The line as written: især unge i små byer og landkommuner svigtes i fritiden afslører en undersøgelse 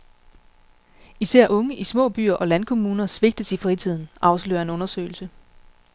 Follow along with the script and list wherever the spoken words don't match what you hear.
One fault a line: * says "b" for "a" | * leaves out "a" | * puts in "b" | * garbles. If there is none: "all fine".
all fine